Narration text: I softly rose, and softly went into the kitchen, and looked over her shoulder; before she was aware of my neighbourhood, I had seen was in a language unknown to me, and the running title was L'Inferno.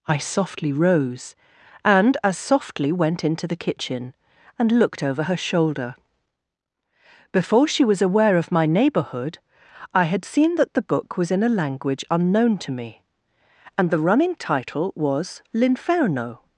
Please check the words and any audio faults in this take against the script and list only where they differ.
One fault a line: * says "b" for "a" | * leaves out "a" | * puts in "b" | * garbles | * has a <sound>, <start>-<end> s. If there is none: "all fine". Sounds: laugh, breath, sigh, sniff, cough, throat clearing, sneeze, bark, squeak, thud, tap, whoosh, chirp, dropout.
* puts in "as"
* puts in "that the book"